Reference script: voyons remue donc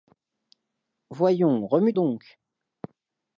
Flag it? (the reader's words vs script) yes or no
no